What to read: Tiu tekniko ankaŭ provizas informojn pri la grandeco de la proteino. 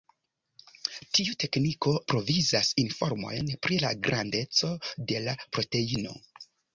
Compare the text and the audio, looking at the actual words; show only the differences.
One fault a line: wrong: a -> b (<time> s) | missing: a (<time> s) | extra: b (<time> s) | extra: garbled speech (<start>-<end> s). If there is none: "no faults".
missing: ankaŭ (1.9 s)